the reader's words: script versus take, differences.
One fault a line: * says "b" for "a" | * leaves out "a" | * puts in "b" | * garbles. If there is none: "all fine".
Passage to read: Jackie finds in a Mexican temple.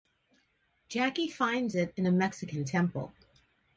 * puts in "it"